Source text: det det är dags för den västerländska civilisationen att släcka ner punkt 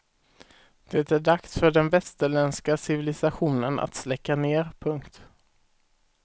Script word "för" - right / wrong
right